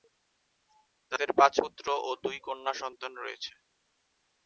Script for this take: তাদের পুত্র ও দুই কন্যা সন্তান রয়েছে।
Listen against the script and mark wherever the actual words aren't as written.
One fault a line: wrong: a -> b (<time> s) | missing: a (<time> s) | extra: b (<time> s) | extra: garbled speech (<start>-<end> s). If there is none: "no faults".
extra: পাঁচ (1.4 s)